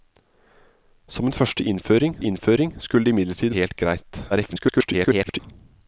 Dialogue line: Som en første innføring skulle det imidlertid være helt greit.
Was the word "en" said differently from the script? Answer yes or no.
no